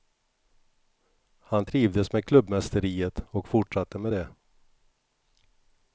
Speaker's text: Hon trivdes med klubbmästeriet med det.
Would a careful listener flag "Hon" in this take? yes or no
yes